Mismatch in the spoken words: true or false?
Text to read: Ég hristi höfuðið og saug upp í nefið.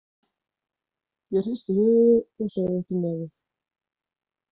false